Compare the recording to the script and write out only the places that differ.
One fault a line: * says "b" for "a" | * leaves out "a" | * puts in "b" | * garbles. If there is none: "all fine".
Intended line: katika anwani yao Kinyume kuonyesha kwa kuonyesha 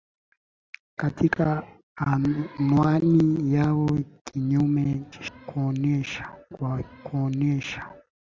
all fine